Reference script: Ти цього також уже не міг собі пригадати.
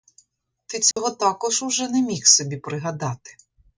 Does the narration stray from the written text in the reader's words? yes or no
no